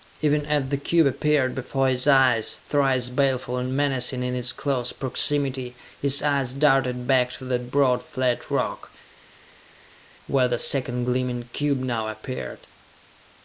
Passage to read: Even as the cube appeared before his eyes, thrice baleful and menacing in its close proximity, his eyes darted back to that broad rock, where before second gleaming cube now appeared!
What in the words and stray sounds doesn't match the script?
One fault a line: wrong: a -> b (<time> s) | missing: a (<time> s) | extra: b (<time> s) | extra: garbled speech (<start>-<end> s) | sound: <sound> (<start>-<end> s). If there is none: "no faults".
extra: flat (8.0 s)
wrong: before -> the (10.5 s)